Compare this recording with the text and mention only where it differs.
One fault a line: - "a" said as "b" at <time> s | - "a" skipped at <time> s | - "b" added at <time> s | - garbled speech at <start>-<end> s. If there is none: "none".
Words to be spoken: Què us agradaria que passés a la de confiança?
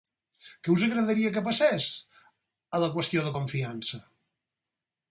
- "qüestió" added at 3.0 s